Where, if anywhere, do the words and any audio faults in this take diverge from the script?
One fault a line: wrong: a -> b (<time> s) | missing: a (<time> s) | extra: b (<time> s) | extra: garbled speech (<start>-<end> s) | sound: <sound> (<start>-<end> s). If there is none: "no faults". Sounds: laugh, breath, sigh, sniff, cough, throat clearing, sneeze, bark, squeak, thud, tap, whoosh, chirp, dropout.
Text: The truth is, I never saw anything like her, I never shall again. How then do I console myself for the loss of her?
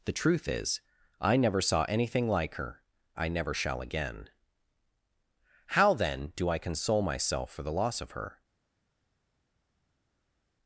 no faults